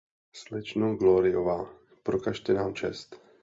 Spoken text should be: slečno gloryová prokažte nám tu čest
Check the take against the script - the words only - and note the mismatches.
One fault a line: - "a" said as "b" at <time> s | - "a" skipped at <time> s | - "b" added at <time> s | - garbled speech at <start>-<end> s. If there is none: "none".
- "tu" skipped at 2.7 s